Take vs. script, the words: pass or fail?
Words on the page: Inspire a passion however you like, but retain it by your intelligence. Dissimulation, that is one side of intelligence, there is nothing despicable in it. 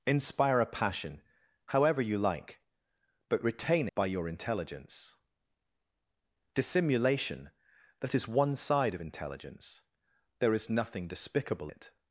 fail